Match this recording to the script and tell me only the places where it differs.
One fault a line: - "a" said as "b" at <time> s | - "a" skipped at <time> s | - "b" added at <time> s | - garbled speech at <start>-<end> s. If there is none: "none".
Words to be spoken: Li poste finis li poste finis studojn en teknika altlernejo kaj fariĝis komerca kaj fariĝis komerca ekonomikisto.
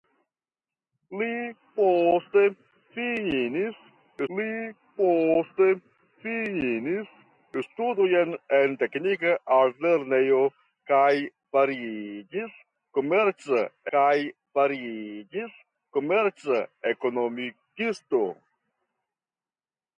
none